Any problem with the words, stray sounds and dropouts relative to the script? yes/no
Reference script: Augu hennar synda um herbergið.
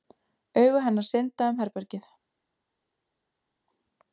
no